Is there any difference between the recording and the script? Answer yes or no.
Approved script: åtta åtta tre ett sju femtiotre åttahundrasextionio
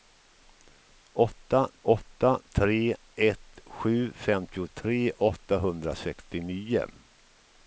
no